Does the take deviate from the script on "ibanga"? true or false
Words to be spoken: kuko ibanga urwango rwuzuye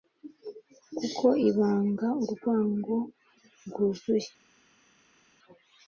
false